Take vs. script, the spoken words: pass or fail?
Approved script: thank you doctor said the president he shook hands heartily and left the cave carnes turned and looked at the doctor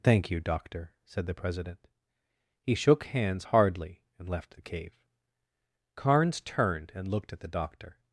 fail